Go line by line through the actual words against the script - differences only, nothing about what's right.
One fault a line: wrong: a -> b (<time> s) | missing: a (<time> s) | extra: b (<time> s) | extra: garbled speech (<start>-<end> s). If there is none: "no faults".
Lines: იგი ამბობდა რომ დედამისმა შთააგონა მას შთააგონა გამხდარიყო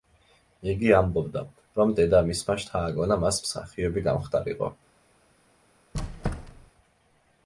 wrong: შთააგონა -> მსახიობი (3.5 s)